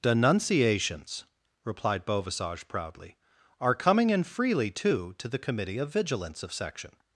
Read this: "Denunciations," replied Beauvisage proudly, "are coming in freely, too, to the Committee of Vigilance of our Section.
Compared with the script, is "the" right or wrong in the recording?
right